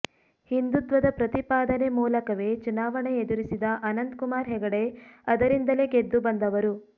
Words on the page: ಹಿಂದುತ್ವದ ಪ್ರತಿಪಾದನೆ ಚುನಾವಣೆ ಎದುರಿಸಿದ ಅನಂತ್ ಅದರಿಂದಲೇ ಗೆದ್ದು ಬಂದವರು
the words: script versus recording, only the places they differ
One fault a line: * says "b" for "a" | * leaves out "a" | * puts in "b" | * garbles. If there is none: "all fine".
* puts in "ಮೂಲಕವೇ"
* puts in "ಕುಮಾರ್ ಹೆಗಡೆ"